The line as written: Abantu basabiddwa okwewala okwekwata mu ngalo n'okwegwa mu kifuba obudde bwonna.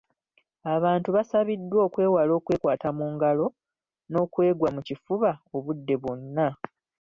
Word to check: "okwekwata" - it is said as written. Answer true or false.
true